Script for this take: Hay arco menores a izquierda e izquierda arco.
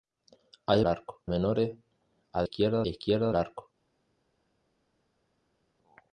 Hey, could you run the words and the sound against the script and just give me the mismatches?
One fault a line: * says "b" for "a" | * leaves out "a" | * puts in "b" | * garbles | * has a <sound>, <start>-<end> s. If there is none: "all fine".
all fine